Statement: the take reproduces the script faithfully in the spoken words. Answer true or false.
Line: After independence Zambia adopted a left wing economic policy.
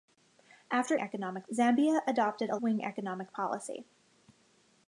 false